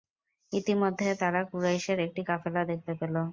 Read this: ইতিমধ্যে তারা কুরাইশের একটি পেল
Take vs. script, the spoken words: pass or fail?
fail